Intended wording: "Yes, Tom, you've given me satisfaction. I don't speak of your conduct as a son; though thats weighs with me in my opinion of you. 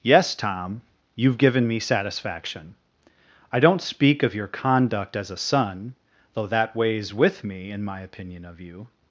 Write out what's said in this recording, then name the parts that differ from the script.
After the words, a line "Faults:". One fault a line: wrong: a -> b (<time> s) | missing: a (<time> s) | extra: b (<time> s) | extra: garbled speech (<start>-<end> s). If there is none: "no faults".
"Yes, Tom, you've given me satisfaction. I don't speak of your conduct as a son; though that weighs with me in my opinion of you.
Faults:
wrong: thats -> that (6.5 s)